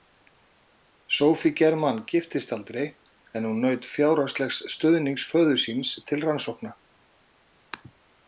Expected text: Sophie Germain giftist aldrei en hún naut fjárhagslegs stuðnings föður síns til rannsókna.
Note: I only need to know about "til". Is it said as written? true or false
true